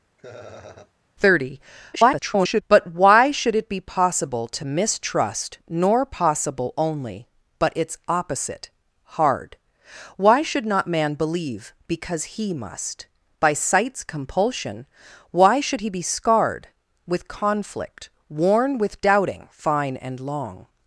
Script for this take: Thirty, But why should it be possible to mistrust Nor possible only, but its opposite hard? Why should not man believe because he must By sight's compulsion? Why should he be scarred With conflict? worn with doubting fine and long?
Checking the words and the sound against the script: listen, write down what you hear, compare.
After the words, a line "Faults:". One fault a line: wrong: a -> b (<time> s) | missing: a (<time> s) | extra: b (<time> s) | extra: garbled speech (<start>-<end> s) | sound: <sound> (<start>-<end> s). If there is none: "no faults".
Thirty, [garbled] But why should it be possible to mistrust Nor possible only, but its opposite hard? Why should not man believe because he must By sight's compulsion? Why should he be scarred With conflict? worn with doubting fine and long?
Faults:
sound: laugh (0.2-0.9 s)
extra: garbled speech (1.9-2.6 s)